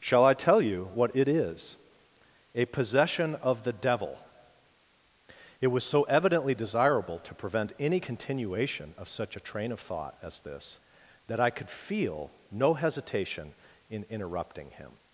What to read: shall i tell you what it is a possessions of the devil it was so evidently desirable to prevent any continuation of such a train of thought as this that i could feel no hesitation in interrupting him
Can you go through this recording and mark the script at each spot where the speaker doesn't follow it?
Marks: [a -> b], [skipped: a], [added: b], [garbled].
shall i tell you what it is a [possessions -> possession] of the devil it was so evidently desirable to prevent any continuation of such a train of thought as this that i could feel no hesitation in interrupting him